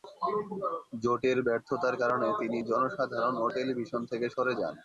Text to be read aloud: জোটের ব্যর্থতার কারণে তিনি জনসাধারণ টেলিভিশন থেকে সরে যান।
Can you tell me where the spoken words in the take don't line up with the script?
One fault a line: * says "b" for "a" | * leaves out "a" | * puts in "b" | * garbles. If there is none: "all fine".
* puts in "ও"